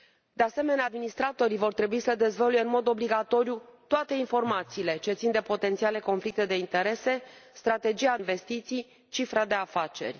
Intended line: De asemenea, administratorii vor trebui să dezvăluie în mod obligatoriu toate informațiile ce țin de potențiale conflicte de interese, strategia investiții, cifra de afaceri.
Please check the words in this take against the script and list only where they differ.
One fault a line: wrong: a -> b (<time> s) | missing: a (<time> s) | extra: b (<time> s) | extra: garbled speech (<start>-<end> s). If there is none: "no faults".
no faults